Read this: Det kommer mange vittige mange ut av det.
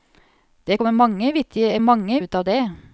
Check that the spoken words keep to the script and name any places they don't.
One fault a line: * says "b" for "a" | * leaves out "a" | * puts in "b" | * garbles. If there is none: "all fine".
all fine